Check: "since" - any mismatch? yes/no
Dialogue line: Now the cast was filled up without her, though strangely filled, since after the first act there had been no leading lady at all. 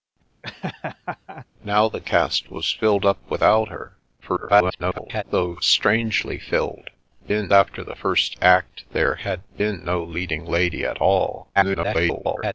yes